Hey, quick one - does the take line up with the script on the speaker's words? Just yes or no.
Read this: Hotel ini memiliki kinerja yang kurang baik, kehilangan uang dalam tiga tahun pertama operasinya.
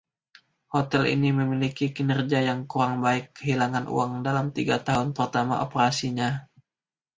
yes